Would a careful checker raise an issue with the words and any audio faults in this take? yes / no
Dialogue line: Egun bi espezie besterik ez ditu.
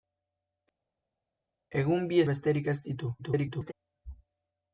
yes